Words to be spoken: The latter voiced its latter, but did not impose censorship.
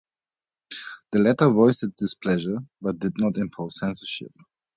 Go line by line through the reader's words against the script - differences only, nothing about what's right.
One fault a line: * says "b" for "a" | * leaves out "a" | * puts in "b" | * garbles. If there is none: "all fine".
* says "displeasure" for "latter"